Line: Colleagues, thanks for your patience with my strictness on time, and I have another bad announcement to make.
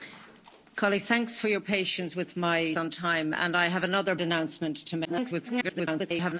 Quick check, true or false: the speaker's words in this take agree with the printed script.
false